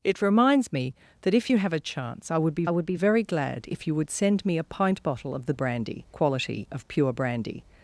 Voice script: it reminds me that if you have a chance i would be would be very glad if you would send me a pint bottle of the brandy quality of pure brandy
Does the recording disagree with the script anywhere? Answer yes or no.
no